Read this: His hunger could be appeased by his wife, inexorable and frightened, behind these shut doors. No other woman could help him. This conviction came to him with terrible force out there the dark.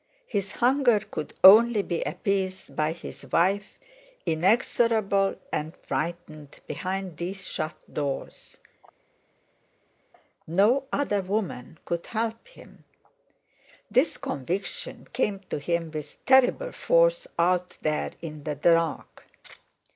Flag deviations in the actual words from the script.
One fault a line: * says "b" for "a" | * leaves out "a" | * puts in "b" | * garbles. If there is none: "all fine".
* puts in "only"
* puts in "in"